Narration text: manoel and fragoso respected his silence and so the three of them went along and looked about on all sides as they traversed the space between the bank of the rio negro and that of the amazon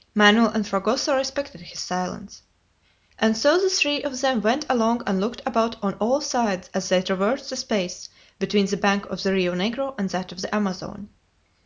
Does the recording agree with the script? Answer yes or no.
yes